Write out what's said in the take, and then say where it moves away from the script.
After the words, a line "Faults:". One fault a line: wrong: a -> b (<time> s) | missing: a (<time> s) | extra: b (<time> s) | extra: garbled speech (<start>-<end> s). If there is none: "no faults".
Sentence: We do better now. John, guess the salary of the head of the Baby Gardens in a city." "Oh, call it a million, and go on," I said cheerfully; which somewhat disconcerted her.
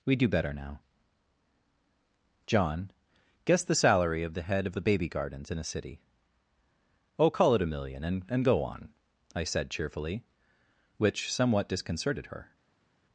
We do better now. John, guess the salary of the head of the Baby Gardens in a city." "Oh, call it a million, and and go on," I said cheerfully; which somewhat disconcerted her.
Faults:
extra: and (8.3 s)